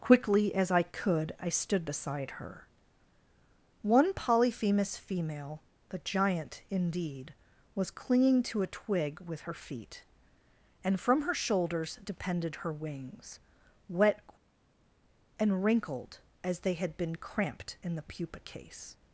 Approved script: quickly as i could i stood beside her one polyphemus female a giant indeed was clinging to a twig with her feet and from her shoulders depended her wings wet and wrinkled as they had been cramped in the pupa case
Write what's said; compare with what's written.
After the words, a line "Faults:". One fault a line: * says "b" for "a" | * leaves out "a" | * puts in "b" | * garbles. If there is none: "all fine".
quickly as i could i stood beside her one polyphemus female the giant indeed was clinging to a twig with her feet and from her shoulders depended her wings wet and wrinkled as they had been cramped in the pupa case
Faults:
* says "the" for "a"